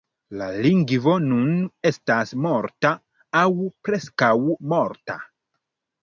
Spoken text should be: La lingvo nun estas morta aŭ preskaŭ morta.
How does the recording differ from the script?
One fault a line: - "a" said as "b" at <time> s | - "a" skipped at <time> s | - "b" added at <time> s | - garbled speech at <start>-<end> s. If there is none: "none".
none